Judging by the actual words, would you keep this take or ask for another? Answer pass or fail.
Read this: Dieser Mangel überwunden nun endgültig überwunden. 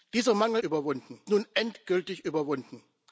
pass